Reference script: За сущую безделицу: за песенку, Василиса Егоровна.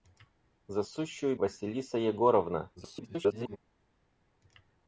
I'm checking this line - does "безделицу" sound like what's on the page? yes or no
no